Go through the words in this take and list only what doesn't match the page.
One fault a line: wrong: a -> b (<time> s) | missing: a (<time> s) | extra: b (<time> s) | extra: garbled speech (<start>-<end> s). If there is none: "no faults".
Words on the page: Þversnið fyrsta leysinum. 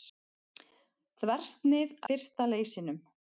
no faults